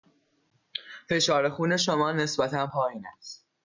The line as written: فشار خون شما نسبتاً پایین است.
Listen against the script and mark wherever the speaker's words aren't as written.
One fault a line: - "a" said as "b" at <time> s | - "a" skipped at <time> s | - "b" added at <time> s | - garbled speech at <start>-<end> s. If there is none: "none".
none